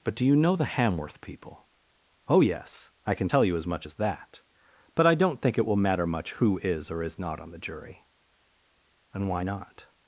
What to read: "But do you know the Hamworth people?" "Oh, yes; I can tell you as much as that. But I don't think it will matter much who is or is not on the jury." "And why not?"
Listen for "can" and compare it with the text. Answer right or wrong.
right